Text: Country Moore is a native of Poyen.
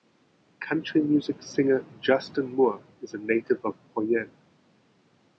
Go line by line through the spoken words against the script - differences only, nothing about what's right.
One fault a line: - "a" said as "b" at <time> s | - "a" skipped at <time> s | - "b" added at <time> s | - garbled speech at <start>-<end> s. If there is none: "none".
- "music singer Justin" added at 1.0 s